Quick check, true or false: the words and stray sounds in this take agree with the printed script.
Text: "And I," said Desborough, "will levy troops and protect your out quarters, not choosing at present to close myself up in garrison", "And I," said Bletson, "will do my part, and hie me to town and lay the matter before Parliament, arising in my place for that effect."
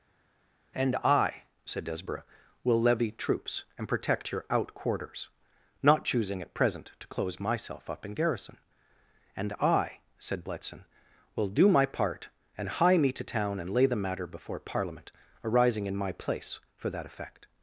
true